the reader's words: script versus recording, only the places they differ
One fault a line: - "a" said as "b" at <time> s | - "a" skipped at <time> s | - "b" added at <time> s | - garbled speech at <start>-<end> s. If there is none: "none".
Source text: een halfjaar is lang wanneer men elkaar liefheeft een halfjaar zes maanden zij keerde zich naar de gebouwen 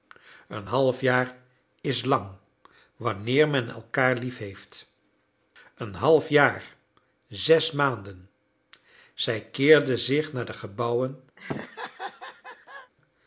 none